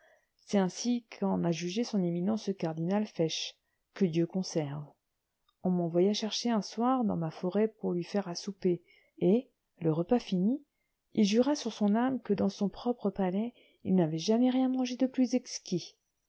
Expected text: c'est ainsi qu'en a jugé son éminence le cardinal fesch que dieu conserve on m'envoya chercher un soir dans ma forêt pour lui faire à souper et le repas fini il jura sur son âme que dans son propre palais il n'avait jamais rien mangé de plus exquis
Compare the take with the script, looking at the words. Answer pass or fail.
pass